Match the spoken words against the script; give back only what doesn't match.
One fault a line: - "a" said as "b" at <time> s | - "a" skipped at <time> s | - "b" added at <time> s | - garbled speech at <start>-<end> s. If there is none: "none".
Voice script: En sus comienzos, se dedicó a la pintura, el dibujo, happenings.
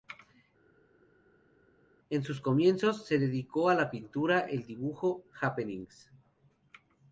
none